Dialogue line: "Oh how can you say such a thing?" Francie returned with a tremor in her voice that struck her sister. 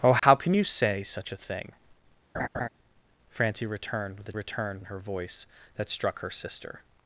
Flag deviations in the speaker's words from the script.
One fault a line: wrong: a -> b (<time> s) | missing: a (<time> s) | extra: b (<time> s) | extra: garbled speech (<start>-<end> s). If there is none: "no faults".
wrong: tremor -> returned (4.3 s)